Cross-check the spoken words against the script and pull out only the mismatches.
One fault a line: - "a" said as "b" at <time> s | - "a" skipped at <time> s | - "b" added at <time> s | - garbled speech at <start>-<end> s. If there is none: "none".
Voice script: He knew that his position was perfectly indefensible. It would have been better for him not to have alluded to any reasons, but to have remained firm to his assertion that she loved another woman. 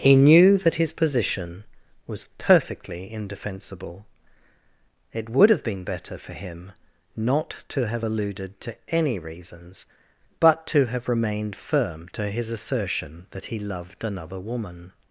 - "she" said as "he" at 13.4 s